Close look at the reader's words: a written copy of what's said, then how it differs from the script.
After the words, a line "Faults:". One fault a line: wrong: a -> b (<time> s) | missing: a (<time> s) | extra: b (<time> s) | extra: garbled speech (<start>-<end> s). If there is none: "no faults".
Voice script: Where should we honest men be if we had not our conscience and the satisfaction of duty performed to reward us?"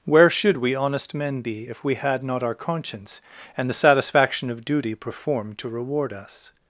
Where should we honest men be if we had not our conscience and the satisfaction of duty performed to reward us?"
Faults:
no faults